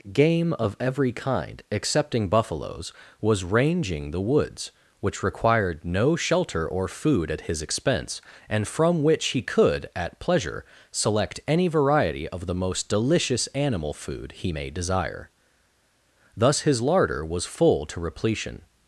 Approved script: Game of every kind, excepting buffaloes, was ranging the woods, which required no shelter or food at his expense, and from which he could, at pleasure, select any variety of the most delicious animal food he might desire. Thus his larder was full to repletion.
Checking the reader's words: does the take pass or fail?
fail